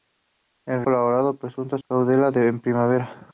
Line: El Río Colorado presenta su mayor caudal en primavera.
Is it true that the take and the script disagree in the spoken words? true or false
true